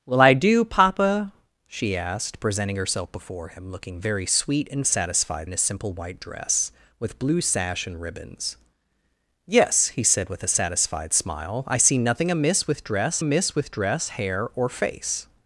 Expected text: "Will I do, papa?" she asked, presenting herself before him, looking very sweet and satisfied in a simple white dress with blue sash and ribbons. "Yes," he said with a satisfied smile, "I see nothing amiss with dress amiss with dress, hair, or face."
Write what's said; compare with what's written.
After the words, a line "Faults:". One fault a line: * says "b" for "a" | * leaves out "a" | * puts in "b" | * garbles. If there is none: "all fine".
"Will I do, papa?" she asked, presenting herself before him, looking very sweet and satisfied in a simple white dress with blue sash and ribbons. "Yes," he said with a satisfied smile, "I see nothing amiss with dress amiss with dress, hair, or face."
Faults:
all fine